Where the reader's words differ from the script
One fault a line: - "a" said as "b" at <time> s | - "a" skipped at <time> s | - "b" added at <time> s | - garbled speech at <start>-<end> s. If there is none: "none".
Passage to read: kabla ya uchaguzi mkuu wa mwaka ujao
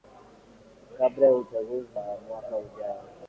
- "mkuu" skipped at 1.9 s